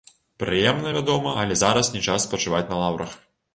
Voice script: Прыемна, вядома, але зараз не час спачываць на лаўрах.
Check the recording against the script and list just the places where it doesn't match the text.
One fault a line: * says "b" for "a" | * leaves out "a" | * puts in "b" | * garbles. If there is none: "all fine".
all fine